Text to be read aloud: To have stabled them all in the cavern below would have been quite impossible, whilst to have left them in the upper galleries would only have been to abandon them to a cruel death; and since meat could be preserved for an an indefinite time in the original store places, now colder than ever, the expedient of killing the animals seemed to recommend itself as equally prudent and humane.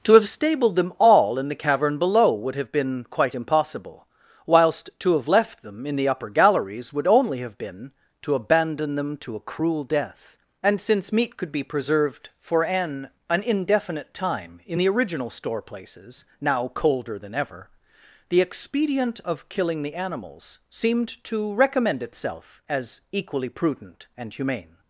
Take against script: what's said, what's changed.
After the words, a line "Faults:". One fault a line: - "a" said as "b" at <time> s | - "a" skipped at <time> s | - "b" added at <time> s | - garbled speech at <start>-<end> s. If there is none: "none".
To have stabled them all in the cavern below would have been quite impossible, whilst to have left them in the upper galleries would only have been to abandon them to a cruel death; and since meat could be preserved for an an indefinite time in the original store places, now colder than ever, the expedient of killing the animals seemed to recommend itself as equally prudent and humane.
Faults:
none